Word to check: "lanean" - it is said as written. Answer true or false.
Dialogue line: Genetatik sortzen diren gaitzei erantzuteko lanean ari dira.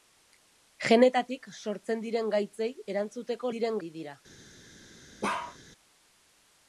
false